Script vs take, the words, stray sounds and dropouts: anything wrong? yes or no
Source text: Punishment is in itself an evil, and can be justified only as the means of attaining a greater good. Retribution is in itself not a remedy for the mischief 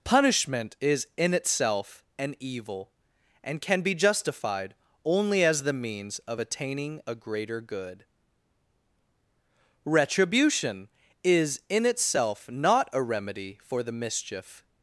no